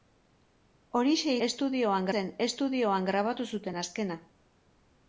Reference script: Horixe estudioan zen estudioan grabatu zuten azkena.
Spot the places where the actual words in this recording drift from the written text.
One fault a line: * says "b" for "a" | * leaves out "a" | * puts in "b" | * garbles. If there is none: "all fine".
all fine